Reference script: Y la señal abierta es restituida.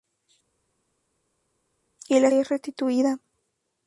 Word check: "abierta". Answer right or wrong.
wrong